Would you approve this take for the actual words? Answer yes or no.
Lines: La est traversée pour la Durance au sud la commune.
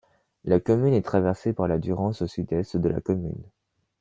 no